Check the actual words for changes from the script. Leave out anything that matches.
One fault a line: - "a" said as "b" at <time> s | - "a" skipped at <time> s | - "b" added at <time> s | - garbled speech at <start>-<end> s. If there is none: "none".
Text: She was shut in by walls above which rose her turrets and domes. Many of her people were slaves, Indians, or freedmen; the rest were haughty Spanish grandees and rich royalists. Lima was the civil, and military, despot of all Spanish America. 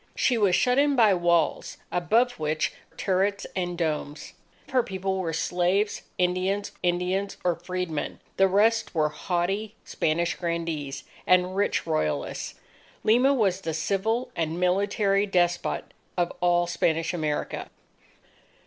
- "rose her" skipped at 2.7 s
- "Many of" skipped at 4.3 s
- "Indians" added at 6.8 s